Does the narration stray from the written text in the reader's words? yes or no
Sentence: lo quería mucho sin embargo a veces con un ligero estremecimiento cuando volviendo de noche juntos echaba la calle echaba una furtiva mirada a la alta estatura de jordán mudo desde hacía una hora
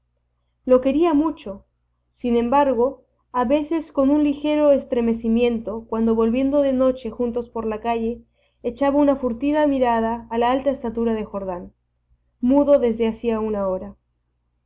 yes